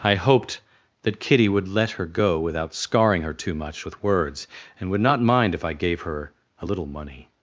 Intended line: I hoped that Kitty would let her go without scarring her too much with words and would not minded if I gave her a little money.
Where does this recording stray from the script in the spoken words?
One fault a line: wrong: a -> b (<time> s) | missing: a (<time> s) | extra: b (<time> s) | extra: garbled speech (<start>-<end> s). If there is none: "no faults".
wrong: minded -> mind (5.2 s)